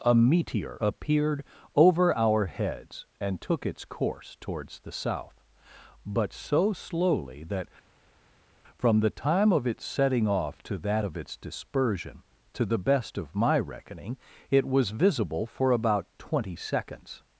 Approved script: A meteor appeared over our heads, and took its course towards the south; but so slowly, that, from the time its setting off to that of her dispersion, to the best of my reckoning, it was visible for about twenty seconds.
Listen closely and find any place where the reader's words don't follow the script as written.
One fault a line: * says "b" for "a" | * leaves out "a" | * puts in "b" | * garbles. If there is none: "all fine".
* puts in "of"
* says "its" for "her"